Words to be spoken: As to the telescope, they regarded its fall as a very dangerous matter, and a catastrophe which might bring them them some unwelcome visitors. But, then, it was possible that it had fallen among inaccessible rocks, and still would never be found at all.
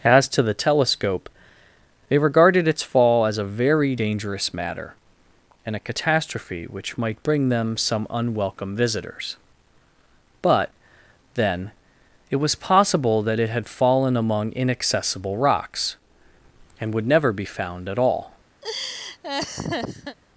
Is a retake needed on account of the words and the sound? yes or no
yes